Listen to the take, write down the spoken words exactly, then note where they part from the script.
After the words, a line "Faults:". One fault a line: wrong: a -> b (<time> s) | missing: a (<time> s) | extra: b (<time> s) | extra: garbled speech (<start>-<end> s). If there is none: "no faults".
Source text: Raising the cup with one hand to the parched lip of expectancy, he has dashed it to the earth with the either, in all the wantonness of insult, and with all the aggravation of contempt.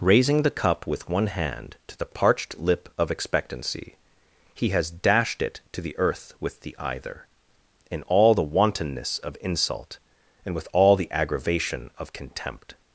Raising the cup with one hand to the parched lip of expectancy, he has dashed it to the earth with the either, in all the wantonness of insult, and with all the aggravation of contempt.
Faults:
no faults